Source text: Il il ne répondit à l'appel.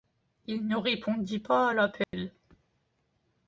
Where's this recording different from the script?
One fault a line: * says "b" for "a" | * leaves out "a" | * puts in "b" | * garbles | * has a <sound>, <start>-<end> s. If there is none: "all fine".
* leaves out "il"
* puts in "pas"
* has a dropout, 2.0-2.1 s